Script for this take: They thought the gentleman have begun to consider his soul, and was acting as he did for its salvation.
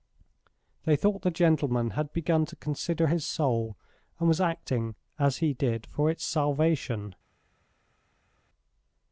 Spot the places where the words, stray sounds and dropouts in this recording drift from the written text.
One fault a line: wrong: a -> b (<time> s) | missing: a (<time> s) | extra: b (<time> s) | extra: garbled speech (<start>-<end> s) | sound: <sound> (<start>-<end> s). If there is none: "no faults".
wrong: have -> had (1.9 s)